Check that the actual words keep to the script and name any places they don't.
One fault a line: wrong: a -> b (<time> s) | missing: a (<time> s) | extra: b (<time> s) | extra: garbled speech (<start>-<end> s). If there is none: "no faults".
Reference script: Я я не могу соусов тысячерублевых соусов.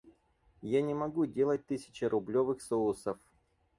missing: я (0.8 s)
wrong: соусов -> делать (1.3 s)